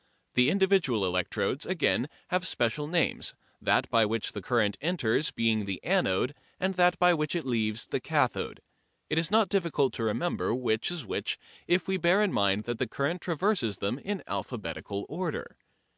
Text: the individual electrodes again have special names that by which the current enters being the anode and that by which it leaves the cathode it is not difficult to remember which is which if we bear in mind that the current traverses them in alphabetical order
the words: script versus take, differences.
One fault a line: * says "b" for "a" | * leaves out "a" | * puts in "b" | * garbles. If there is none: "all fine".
all fine